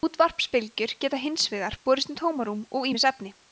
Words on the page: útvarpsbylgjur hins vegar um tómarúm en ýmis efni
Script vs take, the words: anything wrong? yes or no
yes